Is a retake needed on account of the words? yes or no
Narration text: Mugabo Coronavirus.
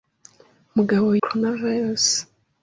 no